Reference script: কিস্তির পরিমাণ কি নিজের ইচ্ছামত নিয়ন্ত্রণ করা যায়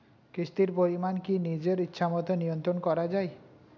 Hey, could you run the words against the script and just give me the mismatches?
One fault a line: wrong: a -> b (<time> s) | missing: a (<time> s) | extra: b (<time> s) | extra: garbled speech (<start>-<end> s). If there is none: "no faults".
no faults